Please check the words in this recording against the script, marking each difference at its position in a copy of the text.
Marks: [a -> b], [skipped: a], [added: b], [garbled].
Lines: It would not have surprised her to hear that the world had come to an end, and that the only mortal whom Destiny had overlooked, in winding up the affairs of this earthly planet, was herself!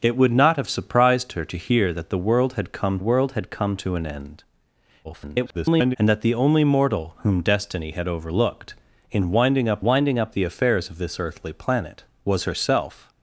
It would not have surprised her to hear that the world had come [added: world had come] to an end, [garbled] and that the only mortal whom Destiny had overlooked, in winding up [added: winding up] the affairs of this earthly planet, was herself!